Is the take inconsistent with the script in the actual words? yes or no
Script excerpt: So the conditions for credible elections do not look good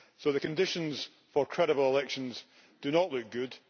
no